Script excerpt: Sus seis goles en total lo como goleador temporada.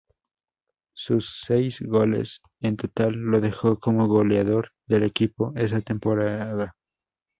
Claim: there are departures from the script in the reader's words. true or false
true